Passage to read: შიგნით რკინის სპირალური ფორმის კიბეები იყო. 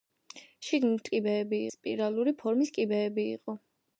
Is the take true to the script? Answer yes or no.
no